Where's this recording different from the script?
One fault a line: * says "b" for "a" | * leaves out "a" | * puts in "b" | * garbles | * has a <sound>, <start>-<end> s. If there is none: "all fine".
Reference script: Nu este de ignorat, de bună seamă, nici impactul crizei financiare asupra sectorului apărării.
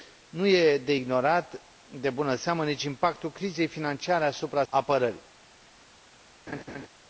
* leaves out "sectorului"
* has a laugh, 6.5-6.9 s